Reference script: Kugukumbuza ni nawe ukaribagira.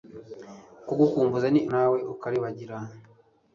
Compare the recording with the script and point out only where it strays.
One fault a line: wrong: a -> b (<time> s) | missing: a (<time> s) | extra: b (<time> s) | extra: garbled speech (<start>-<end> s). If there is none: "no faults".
no faults